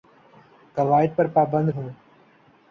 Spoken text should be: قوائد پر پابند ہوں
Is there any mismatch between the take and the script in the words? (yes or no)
no